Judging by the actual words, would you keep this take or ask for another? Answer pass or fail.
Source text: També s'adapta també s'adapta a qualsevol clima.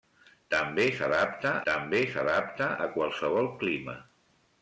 pass